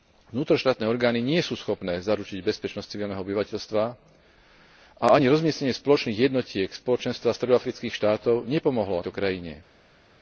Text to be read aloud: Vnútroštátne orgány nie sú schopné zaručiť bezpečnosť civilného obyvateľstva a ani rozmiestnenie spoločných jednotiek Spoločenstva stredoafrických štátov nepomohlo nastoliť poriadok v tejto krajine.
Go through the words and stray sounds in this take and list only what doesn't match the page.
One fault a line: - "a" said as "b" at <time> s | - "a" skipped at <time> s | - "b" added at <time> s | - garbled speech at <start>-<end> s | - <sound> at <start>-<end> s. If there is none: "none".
- "nastoliť poriadok v" skipped at 9.0 s